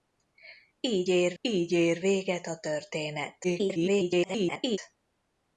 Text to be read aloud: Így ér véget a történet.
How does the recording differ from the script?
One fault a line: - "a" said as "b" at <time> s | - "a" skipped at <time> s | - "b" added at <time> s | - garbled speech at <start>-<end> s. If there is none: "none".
- "így ér" added at 1.4 s
- garbled speech at 3.4-4.8 s